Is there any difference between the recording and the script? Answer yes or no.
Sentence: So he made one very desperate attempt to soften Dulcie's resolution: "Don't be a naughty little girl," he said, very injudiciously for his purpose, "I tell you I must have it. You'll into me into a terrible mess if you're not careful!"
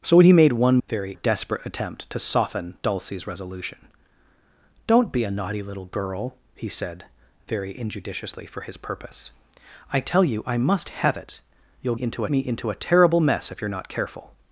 no